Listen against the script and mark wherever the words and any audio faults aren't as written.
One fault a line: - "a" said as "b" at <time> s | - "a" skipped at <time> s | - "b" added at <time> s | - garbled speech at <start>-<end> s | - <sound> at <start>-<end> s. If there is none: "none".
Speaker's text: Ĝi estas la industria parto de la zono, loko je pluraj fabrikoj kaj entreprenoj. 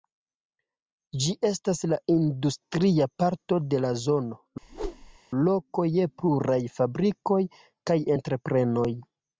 - whoosh at 4.6-5.2 s